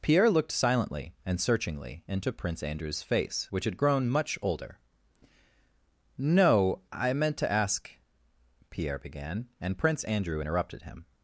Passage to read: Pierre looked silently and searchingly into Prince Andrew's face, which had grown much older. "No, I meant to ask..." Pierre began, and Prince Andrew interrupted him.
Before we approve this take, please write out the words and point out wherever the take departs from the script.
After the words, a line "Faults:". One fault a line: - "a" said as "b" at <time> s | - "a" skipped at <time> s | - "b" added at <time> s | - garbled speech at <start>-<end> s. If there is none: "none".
Pierre looked silently and searchingly into Prince Andrew's face, which had grown much older. "No, I meant to ask..." Pierre began, and Prince Andrew interrupted him.
Faults:
none